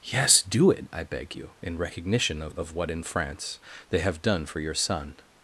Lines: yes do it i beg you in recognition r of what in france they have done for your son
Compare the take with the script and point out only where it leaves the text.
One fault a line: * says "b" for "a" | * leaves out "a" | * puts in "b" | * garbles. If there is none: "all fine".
* says "of" for "r"